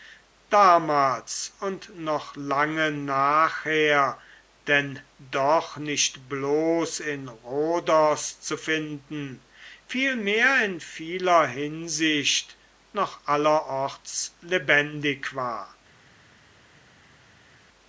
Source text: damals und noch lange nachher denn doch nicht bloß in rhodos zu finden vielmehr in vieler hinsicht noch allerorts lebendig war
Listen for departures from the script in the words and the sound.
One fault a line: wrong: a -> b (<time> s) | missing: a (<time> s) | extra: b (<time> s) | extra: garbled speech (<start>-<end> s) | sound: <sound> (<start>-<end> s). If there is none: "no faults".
no faults